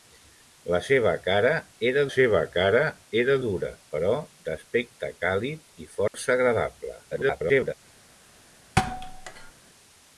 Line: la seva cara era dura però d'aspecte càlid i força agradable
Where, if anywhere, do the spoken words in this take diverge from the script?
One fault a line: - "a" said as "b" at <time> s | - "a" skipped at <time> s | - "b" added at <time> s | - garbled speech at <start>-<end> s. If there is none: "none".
- "seva cara era" added at 2.1 s
- garbled speech at 7.1-7.7 s